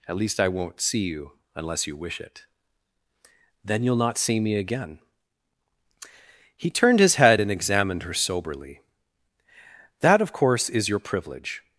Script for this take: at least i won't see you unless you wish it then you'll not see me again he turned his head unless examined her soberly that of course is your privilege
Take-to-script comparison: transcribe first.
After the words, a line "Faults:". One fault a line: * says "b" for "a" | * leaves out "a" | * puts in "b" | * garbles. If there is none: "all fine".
at least i won't see you unless you wish it then you'll not see me again he turned his head and examined her soberly that of course is your privilege
Faults:
* says "and" for "unless"